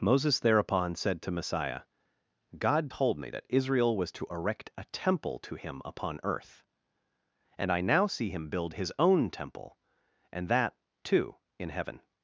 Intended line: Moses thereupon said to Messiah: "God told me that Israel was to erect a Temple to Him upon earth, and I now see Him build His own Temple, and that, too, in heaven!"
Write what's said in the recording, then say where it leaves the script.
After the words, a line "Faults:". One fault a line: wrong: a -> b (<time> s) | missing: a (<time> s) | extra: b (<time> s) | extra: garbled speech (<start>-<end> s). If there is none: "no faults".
Moses thereupon said to Messiah: "God told me that Israel was to erect a Temple to Him upon earth, and I now see Him build His own Temple, and that, too, in heaven!"
Faults:
no faults